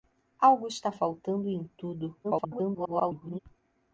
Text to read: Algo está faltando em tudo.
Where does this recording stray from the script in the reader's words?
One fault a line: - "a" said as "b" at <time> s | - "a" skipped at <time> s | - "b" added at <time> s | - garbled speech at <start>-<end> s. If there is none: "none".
- garbled speech at 2.2-3.4 s